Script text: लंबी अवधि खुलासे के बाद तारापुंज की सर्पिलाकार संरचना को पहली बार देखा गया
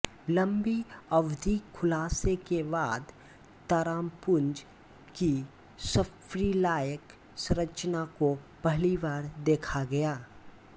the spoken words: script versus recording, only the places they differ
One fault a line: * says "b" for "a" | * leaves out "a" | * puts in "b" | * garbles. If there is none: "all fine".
all fine